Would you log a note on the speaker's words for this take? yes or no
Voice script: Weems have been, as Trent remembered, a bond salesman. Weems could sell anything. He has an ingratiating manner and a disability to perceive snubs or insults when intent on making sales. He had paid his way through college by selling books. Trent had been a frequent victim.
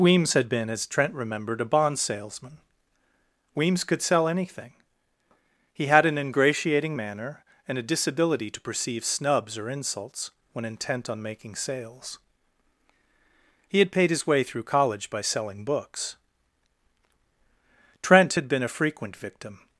yes